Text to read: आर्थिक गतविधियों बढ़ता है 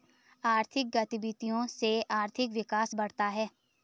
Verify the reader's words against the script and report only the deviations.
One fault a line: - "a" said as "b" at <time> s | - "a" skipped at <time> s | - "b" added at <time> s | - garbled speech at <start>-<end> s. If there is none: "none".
- "से आर्थिक विकास" added at 1.7 s